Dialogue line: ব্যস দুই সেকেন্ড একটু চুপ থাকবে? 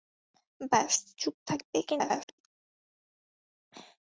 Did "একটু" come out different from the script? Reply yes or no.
yes